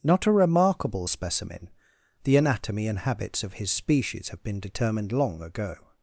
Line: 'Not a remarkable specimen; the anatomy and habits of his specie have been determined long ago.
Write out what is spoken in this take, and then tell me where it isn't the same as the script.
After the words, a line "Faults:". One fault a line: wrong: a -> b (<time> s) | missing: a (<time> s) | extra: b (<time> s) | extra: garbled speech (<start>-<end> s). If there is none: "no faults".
'Not a remarkable specimen; the anatomy and habits of his species have been determined long ago.
Faults:
wrong: specie -> species (3.7 s)